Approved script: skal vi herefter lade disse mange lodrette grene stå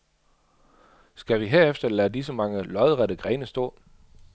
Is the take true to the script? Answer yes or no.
yes